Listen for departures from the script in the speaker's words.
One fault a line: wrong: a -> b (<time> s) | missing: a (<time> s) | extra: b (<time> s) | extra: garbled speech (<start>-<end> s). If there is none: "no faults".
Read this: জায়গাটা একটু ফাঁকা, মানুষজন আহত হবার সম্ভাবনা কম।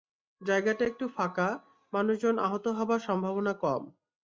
no faults